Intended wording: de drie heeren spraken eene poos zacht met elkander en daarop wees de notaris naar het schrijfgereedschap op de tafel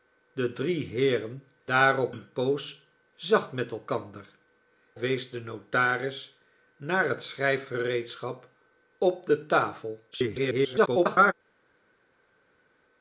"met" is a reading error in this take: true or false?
false